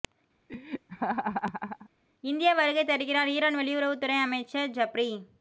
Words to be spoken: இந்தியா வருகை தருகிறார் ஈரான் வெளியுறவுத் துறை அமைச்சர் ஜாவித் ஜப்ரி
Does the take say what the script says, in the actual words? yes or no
no